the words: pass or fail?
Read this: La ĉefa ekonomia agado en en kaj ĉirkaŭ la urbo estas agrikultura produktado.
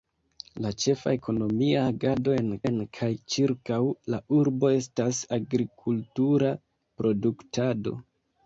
pass